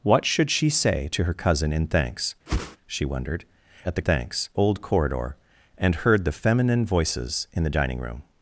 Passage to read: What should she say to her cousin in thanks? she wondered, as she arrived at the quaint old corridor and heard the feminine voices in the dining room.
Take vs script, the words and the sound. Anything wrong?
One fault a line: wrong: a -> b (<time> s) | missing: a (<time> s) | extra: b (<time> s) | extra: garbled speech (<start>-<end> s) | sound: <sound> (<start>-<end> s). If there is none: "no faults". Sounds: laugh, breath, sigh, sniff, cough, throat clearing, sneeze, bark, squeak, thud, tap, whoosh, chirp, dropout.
sound: whoosh (2.5-2.8 s)
missing: as she arrived (3.4 s)
wrong: quaint -> thanks (4.0 s)